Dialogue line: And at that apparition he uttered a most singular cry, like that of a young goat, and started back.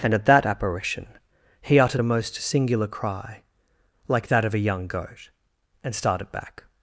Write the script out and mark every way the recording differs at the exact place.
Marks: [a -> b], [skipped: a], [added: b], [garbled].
And at that apparition he uttered a most singular cry, like that of a young goat, and started back.